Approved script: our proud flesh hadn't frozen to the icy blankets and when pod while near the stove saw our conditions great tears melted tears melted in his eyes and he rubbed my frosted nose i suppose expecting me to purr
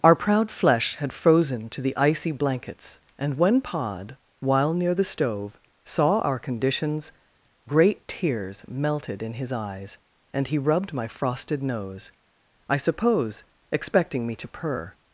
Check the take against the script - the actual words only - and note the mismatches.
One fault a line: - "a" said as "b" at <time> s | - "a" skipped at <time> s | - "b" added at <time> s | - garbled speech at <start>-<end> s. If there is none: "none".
- "hadn't" said as "had" at 1.0 s
- "tears melted" skipped at 9.2 s